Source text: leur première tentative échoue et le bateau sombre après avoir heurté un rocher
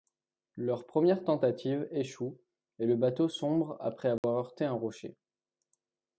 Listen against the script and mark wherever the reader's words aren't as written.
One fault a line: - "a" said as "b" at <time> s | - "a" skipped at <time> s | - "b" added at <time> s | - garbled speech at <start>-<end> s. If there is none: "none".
none